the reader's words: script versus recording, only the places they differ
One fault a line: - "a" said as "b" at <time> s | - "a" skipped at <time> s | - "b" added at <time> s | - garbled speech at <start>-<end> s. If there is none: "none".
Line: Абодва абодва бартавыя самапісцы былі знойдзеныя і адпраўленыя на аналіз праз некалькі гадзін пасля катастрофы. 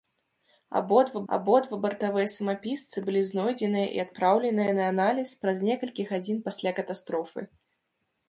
none